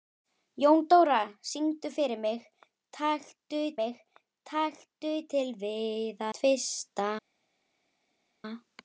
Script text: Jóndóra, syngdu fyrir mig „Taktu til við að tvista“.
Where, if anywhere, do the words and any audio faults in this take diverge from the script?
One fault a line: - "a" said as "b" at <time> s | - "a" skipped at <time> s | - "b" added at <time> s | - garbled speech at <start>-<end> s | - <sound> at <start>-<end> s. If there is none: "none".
- "mig Taktu" added at 3.8 s
- "að" skipped at 6.2 s